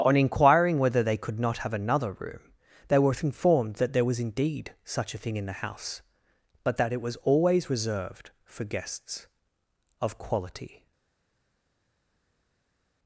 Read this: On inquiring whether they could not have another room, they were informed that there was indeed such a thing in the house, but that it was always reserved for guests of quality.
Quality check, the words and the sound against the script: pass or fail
pass